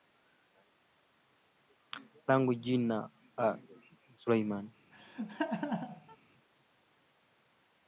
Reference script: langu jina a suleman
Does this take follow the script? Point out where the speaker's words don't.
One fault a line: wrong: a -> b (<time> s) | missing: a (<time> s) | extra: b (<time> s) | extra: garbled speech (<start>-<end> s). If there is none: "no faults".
no faults